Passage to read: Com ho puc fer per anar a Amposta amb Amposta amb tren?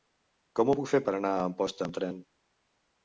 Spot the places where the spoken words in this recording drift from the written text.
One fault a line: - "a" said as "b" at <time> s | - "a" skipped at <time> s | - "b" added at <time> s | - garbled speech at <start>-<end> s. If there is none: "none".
- "Amposta amb" skipped at 2.0 s